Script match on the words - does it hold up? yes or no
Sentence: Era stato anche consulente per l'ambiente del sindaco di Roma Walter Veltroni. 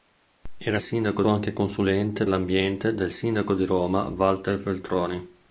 no